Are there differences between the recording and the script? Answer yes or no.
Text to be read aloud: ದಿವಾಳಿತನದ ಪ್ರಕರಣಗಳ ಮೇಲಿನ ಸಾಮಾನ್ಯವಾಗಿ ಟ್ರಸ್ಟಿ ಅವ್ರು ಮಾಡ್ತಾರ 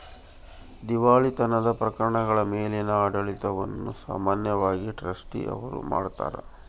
yes